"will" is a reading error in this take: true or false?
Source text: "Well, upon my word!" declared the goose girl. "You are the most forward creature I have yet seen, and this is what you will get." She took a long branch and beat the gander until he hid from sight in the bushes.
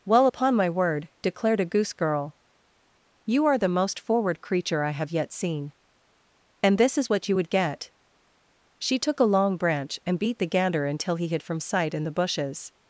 true